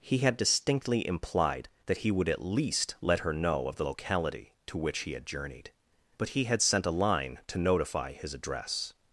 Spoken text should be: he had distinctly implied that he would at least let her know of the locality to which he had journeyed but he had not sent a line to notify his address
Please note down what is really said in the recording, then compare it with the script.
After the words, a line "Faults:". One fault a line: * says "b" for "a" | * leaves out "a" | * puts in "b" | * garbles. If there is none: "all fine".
he had distinctly implied that he would at least let her know of the locality to which he had journeyed but he had sent a line to notify his address
Faults:
* leaves out "not"